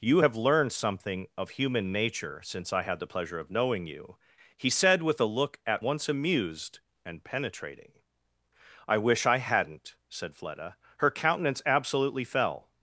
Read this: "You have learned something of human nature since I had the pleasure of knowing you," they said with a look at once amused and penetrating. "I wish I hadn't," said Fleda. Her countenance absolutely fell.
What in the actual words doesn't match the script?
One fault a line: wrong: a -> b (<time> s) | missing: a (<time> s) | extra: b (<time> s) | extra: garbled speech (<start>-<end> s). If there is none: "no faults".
wrong: they -> he (4.5 s)